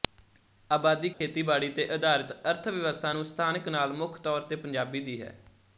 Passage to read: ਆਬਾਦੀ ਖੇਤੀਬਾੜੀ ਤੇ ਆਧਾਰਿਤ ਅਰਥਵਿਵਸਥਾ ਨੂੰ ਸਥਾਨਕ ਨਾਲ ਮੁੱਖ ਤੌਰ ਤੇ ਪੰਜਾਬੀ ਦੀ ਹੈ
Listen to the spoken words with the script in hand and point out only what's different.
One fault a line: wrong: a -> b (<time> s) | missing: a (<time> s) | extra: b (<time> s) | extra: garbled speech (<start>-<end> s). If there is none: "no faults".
no faults